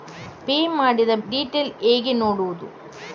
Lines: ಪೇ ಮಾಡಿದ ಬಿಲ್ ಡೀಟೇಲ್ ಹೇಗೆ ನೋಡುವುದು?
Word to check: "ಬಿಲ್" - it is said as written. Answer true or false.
false